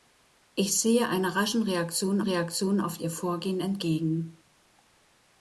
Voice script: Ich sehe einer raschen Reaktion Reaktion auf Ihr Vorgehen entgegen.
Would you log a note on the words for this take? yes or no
no